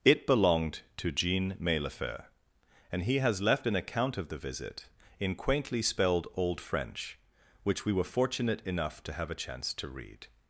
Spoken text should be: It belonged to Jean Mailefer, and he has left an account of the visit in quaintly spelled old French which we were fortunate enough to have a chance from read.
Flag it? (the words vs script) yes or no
yes